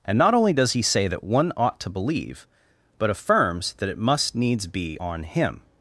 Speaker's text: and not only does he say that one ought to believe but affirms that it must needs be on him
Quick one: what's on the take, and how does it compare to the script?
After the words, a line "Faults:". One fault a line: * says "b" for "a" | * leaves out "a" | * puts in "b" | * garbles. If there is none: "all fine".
and not only does he say that one ought to believe but affirms that it must needs be on him
Faults:
all fine